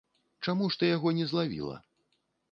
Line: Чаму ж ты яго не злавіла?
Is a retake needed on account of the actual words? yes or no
no